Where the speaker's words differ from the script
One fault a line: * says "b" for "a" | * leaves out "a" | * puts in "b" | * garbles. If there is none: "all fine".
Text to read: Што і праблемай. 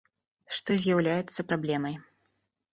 * puts in "з'яўляецца"